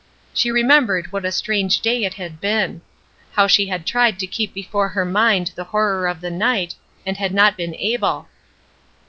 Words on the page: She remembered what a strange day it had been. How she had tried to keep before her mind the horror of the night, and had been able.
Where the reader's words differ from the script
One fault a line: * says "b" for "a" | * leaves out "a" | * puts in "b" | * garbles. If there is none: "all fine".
* puts in "not"